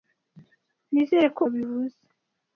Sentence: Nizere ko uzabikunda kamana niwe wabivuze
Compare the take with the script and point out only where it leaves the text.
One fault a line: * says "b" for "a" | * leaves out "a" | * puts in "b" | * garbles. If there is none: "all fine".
* leaves out "uzabikunda kamana niwe"